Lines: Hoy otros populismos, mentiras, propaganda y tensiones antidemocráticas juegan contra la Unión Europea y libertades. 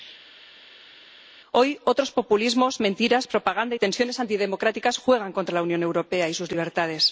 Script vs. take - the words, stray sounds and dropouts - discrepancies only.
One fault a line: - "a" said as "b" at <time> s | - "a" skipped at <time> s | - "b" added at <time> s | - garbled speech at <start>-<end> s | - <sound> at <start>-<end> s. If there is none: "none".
- "sus" added at 6.3 s